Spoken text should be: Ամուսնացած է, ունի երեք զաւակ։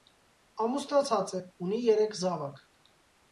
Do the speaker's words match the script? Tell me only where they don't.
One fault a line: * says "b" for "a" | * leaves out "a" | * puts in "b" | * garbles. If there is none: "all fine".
all fine